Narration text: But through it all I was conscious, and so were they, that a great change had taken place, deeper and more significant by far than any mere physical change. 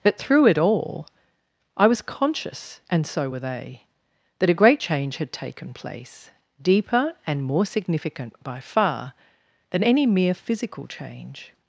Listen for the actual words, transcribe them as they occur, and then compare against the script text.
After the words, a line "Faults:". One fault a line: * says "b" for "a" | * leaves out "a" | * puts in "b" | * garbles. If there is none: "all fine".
But through it all I was conscious, and so were they, that a great change had taken place, deeper and more significant by far than any mere physical change.
Faults:
all fine